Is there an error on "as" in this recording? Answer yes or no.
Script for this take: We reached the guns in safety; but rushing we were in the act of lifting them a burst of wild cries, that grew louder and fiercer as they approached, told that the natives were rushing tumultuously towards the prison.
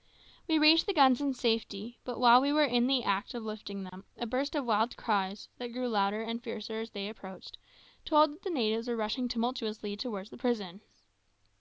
no